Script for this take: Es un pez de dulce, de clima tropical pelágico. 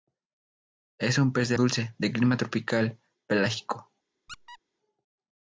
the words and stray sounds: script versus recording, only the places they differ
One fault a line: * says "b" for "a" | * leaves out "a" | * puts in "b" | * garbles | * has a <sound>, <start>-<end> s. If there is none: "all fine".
* has a squeak, 4.3-4.6 s